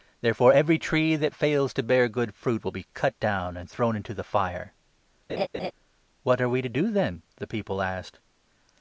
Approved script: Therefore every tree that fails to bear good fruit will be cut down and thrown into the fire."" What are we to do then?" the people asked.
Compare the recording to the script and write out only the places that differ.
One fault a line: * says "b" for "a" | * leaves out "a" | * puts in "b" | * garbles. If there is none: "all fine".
all fine